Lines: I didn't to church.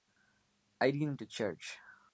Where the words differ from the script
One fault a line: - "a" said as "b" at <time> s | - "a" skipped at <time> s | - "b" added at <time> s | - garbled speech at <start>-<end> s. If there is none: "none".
none